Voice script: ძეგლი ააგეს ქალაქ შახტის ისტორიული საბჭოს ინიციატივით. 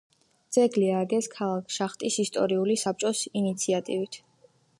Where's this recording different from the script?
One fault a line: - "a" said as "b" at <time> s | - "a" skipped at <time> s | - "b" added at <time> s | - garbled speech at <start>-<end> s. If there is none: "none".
none